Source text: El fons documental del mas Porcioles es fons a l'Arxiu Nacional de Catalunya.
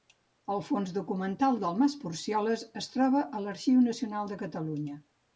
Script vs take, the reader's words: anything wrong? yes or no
yes